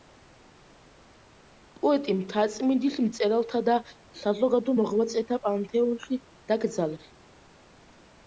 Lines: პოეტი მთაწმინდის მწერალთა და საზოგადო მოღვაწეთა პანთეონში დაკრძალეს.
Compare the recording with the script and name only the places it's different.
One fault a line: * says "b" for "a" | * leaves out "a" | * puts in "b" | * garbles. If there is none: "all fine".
all fine